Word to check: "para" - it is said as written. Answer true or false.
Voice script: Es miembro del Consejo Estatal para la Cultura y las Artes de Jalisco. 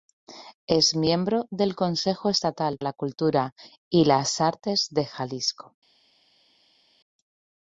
false